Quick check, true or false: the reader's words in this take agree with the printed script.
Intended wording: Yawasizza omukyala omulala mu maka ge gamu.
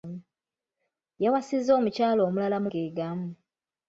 false